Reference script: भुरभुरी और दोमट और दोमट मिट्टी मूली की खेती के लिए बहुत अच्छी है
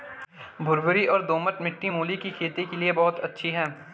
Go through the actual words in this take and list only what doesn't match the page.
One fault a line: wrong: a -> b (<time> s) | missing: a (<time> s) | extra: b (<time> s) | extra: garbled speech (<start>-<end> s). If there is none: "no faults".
missing: और दोमट (1.6 s)